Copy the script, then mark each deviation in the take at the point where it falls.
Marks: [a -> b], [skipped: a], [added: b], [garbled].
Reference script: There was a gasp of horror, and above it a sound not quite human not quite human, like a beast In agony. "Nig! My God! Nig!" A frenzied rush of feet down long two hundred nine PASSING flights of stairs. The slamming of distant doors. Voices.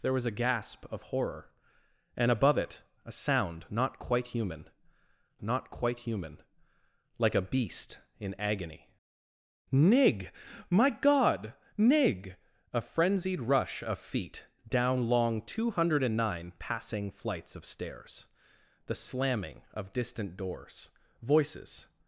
There was a gasp of horror, and above it a sound not quite human not quite human, like a beast In agony. "Nig! My God! Nig!" A frenzied rush of feet down long two hundred nine PASSING flights of stairs. The slamming of distant doors. Voices.